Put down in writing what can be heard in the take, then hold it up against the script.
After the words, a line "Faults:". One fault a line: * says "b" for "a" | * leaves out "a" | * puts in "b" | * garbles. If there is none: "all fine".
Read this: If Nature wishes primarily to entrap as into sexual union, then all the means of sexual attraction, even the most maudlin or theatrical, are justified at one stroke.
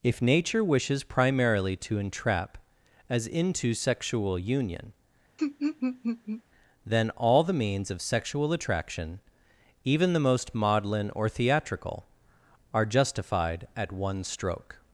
If Nature wishes primarily to entrap as into sexual union, then all the means of sexual attraction, even the most maudlin or theatrical, are justified at one stroke.
Faults:
all fine